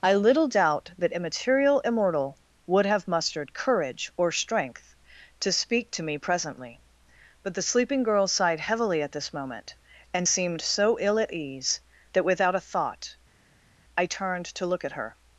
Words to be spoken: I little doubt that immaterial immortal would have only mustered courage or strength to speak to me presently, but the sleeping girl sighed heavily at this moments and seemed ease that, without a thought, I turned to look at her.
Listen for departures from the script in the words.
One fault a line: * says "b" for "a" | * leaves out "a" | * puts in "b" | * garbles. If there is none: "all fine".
* leaves out "only"
* says "moment" for "moments"
* puts in "so ill at"